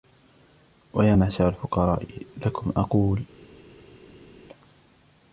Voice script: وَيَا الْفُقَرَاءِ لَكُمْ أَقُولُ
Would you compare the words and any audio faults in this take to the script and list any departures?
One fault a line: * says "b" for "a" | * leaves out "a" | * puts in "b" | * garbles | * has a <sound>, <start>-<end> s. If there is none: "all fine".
* puts in "مَعْشَرَ"